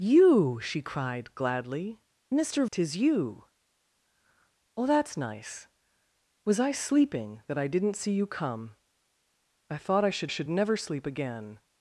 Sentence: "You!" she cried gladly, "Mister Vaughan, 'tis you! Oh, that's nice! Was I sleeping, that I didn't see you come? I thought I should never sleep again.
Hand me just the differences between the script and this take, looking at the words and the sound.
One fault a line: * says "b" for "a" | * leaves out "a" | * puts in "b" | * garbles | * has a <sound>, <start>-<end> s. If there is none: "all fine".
* leaves out "Vaughan"
* puts in "should"